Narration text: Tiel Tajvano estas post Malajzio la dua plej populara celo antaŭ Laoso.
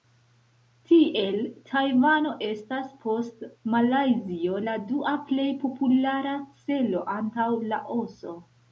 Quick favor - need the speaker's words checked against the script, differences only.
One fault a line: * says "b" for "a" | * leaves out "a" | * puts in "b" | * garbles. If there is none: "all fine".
all fine